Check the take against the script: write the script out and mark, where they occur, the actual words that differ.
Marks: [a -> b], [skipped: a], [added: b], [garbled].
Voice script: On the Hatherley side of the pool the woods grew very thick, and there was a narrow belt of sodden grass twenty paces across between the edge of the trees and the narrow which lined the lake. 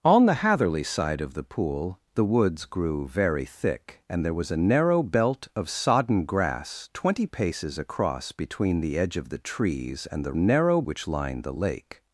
On the Hatherley side of the pool the woods grew very thick, and there was a narrow belt of sodden grass twenty paces across between the edge of the trees and the narrow which lined the lake.